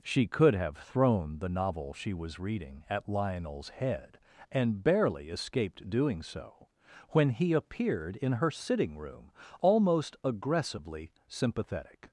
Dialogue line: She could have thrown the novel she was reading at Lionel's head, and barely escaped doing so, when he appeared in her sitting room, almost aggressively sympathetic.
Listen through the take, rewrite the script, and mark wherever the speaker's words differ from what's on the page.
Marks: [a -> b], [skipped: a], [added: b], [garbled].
She could have thrown the novel she was reading at Lionel's head, and barely escaped doing so, when he appeared in her sitting room, almost aggressively sympathetic.